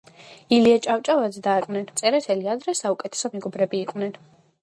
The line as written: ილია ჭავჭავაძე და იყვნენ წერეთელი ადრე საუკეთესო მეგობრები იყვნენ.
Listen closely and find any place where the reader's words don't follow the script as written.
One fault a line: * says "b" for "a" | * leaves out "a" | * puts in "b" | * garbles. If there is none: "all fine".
all fine